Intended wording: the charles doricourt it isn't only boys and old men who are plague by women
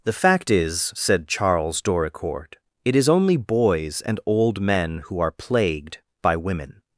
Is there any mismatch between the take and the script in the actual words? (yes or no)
yes